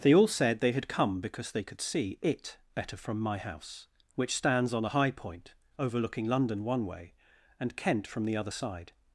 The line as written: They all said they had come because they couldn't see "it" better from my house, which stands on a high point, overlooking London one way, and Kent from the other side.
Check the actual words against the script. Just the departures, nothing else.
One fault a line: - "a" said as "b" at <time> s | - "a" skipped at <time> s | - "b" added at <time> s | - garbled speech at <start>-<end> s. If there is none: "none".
- "couldn't" said as "could" at 1.6 s